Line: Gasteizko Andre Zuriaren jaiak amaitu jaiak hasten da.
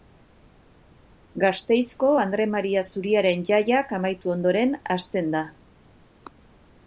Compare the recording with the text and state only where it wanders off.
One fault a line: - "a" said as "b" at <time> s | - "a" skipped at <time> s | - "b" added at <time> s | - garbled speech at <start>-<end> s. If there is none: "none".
- "Maria" added at 2.5 s
- "jaiak" said as "ondoren" at 4.4 s